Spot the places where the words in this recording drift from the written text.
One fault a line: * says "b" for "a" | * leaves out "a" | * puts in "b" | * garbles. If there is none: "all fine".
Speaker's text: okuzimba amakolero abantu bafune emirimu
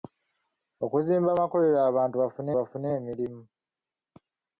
* puts in "bafune"